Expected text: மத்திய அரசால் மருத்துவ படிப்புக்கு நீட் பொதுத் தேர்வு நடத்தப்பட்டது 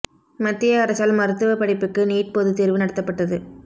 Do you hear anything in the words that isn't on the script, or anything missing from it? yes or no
no